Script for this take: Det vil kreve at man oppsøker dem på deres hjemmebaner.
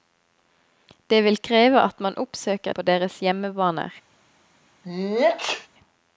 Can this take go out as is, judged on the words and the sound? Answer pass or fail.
fail